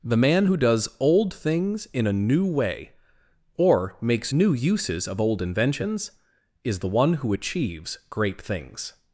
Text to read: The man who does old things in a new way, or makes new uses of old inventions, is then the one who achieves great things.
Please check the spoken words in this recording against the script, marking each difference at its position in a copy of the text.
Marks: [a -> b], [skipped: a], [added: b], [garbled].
The man who does old things in a new way, or makes new uses of old inventions, is [skipped: then] the one who achieves great things.